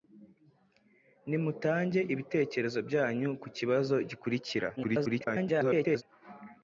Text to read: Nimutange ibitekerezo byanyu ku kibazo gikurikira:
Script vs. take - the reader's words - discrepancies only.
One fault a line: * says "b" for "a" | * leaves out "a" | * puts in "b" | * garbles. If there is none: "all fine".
* garbles